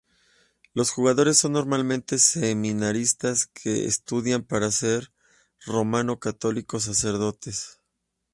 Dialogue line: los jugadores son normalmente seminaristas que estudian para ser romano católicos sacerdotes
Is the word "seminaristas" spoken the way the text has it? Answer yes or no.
yes